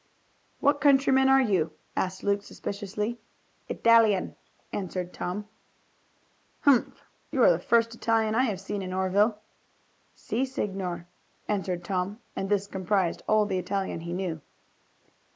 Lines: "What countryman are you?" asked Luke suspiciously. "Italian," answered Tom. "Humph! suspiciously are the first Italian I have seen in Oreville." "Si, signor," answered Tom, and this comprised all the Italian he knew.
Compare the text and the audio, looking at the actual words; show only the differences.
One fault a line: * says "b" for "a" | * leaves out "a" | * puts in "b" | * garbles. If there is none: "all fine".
* says "you" for "suspiciously"